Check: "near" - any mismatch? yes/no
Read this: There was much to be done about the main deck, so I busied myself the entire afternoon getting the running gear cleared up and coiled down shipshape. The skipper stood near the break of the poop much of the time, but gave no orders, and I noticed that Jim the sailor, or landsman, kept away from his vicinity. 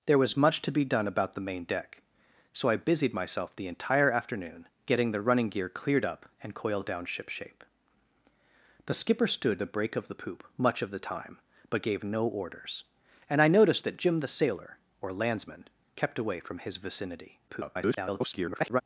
yes